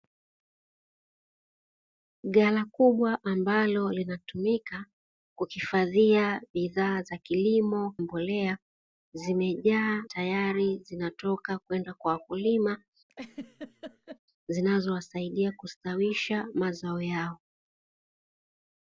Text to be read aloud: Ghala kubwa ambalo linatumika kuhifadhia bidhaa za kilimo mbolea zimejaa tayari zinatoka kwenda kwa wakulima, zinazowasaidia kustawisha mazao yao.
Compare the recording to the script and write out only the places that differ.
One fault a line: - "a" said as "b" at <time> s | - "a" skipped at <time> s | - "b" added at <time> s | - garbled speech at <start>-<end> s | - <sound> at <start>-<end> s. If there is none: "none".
- laugh at 13.1-14.2 s